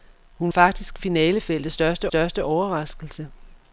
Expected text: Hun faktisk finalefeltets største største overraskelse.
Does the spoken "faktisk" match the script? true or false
true